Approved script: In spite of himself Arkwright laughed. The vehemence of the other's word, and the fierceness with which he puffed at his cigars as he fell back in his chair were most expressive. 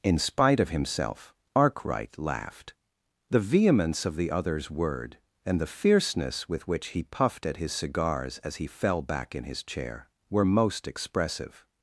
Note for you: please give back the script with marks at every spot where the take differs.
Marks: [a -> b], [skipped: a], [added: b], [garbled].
In spite of himself Arkwright laughed. The vehemence of the other's word, and the fierceness with which he puffed at his cigars as he fell back in his chair were most expressive.